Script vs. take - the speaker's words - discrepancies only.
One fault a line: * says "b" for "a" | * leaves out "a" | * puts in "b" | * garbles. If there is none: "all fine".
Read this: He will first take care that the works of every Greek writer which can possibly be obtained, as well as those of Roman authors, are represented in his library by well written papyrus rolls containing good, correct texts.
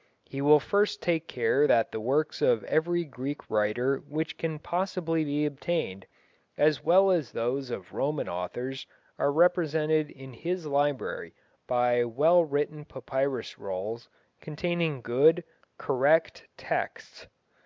all fine